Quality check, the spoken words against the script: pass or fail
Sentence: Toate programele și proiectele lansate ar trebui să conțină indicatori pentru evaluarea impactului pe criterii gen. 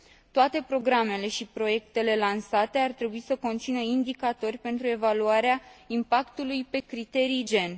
pass